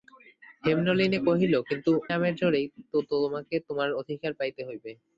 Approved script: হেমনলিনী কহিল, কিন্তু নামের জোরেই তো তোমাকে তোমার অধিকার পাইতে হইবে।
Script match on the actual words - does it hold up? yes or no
yes